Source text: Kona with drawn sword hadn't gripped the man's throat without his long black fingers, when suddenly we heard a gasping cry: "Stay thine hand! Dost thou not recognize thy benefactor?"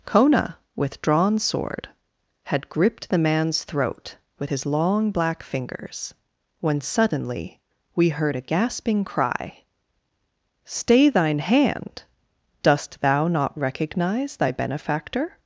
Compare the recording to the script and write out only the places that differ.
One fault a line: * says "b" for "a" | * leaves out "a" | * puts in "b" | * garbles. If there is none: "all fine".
* says "had" for "hadn't"
* says "with" for "without"